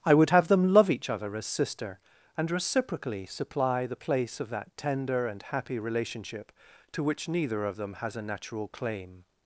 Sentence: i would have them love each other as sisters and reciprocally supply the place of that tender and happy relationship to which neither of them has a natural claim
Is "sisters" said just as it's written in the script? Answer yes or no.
no